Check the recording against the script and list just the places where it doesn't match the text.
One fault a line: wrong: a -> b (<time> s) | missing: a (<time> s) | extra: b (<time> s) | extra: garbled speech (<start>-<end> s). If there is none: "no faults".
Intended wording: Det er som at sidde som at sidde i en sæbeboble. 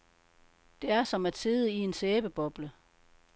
missing: som at sidde (1.7 s)